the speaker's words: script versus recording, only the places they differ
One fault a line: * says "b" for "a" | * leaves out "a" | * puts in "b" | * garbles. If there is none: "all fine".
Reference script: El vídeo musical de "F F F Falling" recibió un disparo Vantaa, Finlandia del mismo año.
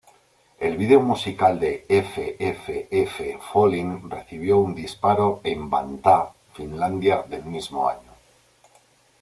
* puts in "en"